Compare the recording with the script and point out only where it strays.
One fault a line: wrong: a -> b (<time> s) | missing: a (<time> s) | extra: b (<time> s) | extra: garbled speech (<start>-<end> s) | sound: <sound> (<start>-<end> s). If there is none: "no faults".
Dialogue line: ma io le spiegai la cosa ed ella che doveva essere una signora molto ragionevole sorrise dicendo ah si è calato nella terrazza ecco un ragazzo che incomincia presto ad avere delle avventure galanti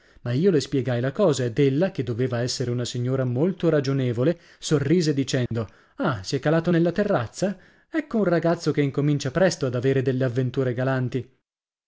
sound: dropout (5.5-5.5 s)